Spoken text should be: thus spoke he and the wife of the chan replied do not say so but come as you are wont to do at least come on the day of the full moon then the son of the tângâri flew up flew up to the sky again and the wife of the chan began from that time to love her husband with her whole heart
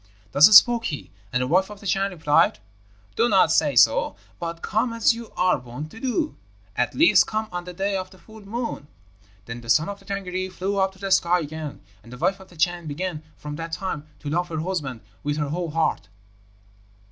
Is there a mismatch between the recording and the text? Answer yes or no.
yes